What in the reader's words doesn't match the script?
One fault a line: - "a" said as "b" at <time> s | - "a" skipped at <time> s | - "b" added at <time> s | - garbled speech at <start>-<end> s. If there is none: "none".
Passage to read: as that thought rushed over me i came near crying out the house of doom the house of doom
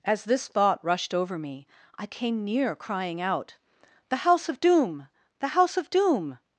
- "that" said as "this" at 0.2 s